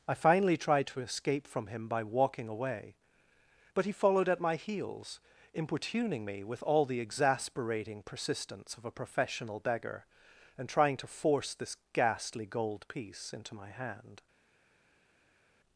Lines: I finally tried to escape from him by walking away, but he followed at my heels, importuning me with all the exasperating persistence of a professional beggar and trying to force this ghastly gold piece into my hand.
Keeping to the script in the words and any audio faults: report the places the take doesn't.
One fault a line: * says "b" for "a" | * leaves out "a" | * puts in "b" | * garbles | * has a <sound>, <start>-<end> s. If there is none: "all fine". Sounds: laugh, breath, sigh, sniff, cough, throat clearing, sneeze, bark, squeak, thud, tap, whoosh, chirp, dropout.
all fine